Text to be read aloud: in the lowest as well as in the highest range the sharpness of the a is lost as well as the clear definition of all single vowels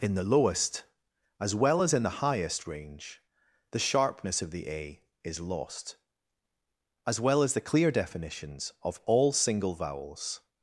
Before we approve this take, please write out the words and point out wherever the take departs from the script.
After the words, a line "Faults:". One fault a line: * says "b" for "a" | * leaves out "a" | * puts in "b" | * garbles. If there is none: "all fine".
in the lowest as well as in the highest range the sharpness of the a is lost as well as the clear definitions of all single vowels
Faults:
* says "definitions" for "definition"